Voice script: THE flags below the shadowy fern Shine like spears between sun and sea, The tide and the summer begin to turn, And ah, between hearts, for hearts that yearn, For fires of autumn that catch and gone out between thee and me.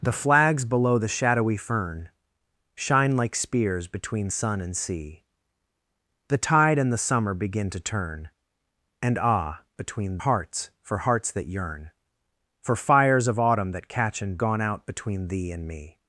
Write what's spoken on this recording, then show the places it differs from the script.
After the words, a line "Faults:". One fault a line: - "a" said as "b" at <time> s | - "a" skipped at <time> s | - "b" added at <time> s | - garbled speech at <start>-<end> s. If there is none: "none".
THE flags below the shadowy fern Shine like spears between sun and sea, The tide and the summer begin to turn, And ah, between hearts, for hearts that yearn, For fires of autumn that catch and gone out between thee and me.
Faults:
none